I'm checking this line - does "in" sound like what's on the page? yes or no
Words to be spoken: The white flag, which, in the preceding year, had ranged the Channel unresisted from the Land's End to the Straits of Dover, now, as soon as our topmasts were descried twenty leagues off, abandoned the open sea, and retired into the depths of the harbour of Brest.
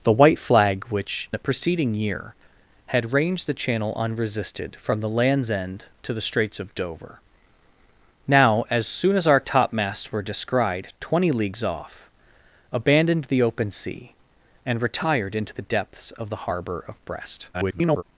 no